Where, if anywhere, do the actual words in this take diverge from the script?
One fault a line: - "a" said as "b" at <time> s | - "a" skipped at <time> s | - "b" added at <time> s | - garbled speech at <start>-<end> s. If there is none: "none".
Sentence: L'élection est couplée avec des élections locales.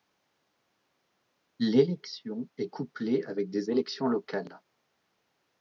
none